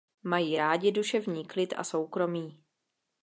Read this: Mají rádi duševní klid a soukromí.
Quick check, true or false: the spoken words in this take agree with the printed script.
true